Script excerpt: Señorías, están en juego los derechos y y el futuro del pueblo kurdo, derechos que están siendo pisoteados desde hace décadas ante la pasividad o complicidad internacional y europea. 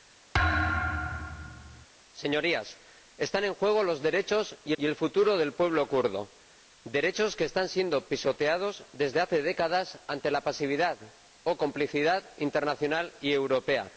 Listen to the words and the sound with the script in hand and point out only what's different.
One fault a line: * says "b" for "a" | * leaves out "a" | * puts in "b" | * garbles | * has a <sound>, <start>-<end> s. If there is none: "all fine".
* has a thud, 0.3-1.9 s